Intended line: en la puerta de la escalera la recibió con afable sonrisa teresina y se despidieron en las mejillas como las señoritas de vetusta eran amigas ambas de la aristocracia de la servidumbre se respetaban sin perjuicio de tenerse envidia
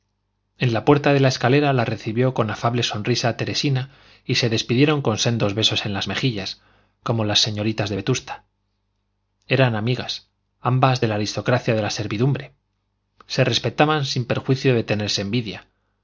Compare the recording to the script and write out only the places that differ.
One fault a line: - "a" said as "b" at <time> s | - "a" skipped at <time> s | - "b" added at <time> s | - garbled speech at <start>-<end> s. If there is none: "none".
- "con sendos besos" added at 5.0 s